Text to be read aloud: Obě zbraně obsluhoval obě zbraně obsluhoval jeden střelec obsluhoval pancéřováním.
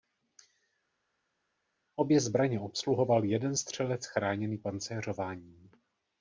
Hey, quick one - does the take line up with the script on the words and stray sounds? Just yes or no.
no